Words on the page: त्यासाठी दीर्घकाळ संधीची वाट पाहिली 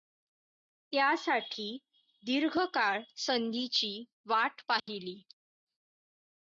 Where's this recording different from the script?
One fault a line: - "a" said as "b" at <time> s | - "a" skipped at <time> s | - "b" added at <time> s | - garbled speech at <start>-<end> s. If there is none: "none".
none